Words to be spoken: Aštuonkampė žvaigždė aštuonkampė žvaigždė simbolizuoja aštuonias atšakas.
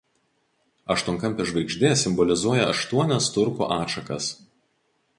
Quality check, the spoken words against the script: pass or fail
fail